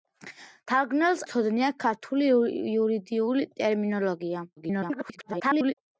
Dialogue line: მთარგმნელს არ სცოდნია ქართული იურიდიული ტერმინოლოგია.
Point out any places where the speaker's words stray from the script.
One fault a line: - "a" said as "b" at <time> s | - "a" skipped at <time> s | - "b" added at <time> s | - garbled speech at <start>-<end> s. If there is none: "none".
- "არ" skipped at 1.2 s
- garbled speech at 4.6-5.7 s